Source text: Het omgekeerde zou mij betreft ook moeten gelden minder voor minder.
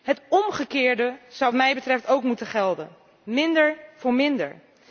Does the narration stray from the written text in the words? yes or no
no